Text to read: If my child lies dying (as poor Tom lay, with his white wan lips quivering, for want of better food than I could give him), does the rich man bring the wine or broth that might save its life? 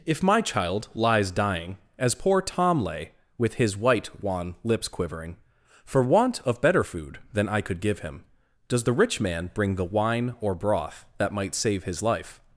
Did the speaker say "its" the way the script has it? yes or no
no